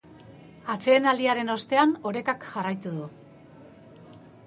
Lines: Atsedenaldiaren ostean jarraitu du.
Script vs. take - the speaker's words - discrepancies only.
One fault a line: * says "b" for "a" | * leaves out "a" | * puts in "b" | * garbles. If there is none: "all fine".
* puts in "orekak"